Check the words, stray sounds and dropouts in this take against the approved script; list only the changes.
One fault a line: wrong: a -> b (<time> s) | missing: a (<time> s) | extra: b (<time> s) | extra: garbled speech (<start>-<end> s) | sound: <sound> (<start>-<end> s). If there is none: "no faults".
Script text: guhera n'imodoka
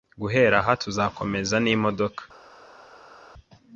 extra: aha tuzakomeza (0.6 s)